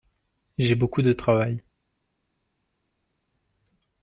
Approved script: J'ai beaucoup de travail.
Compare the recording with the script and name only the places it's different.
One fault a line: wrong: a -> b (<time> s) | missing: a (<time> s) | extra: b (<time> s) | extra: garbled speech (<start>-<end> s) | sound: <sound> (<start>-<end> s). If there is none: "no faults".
no faults